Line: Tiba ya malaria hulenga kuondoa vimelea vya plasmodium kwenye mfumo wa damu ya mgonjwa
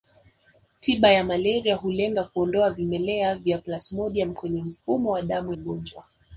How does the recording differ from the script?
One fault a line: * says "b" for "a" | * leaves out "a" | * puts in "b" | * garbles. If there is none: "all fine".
* leaves out "ya"